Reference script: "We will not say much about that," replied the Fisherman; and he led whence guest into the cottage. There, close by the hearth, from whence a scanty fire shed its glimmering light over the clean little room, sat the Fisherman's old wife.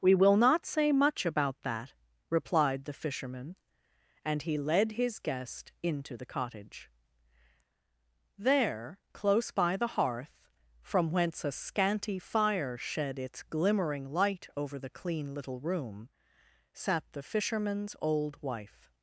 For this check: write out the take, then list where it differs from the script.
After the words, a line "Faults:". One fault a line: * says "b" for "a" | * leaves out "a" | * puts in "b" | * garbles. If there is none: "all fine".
"We will not say much about that," replied the Fisherman; and he led his guest into the cottage. There, close by the hearth, from whence a scanty fire shed its glimmering light over the clean little room, sat the Fisherman's old wife.
Faults:
* says "his" for "whence"